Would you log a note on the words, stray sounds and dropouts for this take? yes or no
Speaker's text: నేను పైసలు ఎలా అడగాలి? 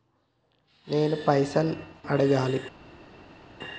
yes